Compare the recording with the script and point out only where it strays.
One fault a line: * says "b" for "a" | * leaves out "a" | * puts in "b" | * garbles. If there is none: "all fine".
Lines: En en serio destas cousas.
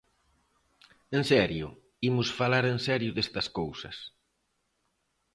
* puts in "serio imos falar"